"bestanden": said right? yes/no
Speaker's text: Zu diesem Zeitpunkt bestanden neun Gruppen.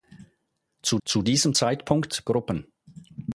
no